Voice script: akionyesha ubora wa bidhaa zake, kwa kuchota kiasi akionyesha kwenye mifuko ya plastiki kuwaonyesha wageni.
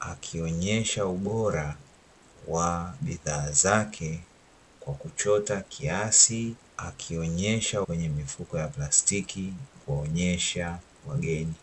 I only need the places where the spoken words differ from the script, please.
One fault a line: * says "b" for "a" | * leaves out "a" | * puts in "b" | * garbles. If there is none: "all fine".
all fine